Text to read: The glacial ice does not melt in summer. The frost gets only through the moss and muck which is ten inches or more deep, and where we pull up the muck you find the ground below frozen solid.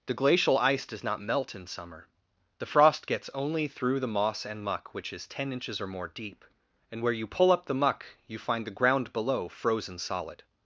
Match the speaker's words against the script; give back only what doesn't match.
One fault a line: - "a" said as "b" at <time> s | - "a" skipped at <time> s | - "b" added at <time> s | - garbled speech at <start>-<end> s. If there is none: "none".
- "we" said as "you" at 7.1 s